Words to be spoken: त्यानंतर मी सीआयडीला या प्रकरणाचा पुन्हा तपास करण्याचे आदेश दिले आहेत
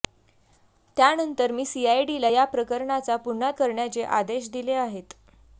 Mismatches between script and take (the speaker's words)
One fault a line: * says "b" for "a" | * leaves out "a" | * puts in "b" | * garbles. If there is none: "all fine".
* leaves out "तपास"